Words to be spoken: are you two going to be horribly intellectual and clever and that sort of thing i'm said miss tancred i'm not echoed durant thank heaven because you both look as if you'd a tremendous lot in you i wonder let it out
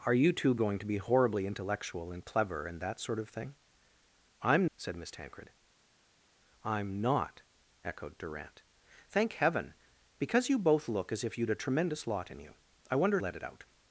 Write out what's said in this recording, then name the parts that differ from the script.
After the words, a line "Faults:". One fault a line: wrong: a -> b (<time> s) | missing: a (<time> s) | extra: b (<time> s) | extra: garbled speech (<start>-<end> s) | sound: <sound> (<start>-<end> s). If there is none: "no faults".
are you two going to be horribly intellectual and clever and that sort of thing i'm said miss tancred i'm not echoed durant thank heaven because you both look as if you'd a tremendous lot in you i wonder let it out
Faults:
no faults